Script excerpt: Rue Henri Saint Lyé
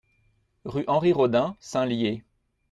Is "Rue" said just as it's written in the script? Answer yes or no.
yes